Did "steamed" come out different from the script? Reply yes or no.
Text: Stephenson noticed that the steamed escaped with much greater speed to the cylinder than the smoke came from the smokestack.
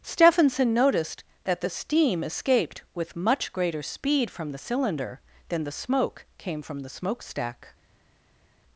yes